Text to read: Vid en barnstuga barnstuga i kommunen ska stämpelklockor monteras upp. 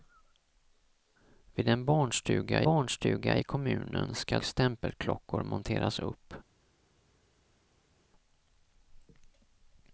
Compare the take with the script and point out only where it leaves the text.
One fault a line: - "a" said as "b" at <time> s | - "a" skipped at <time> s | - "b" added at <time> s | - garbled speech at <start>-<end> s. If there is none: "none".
none